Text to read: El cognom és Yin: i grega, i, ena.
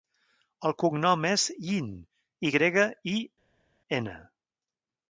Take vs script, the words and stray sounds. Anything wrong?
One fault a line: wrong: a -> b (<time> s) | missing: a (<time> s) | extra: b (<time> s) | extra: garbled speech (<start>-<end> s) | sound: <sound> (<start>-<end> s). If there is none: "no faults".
no faults